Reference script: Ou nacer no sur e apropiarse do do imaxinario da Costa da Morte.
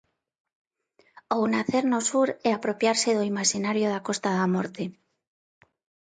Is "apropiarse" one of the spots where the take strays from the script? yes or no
no